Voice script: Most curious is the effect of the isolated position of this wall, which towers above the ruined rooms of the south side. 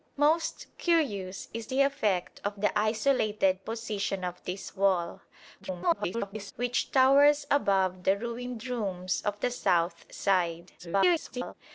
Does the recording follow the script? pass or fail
fail